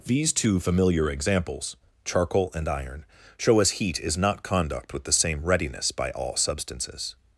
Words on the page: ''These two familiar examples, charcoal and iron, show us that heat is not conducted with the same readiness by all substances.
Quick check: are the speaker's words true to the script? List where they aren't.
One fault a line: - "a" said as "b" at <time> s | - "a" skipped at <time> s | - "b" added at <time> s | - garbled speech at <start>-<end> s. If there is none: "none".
- "that" skipped at 3.7 s
- "conducted" said as "conduct" at 4.4 s